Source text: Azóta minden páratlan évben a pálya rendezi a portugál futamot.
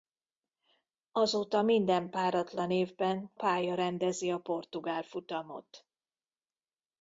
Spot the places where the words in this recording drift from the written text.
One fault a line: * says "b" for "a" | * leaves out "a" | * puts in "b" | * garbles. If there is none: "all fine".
* leaves out "a"